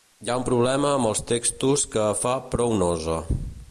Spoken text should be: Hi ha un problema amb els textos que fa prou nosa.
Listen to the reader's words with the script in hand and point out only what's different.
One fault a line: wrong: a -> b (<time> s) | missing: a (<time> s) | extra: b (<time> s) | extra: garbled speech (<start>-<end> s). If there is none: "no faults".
no faults